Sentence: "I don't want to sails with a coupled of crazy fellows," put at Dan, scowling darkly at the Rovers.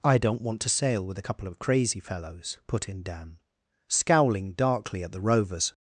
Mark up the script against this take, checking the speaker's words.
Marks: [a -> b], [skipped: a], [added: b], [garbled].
"I don't want to [sails -> sail] with a [coupled -> couple] of crazy fellows," put [at -> in] Dan, scowling darkly at the Rovers.